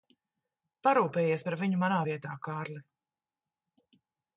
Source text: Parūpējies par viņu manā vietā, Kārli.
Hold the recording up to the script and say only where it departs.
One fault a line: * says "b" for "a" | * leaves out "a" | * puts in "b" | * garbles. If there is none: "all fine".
all fine